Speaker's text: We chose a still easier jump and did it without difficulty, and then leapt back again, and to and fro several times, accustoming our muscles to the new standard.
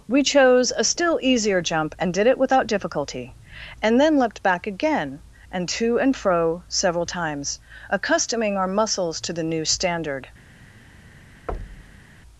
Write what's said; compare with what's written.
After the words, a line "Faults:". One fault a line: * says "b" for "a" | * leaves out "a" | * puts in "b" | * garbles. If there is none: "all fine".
We chose a still easier jump and did it without difficulty, and then leapt back again, and to and fro several times, accustoming our muscles to the new standard.
Faults:
all fine